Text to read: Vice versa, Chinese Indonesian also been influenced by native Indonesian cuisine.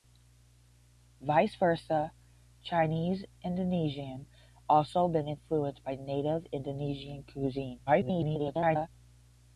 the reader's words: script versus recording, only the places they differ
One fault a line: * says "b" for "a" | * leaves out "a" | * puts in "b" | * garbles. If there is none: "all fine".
* garbles